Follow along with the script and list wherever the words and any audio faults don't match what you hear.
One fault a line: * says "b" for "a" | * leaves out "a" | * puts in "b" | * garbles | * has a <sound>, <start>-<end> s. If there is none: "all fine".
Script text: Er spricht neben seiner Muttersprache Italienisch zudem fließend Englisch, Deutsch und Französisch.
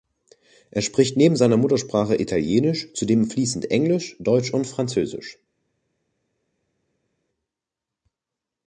all fine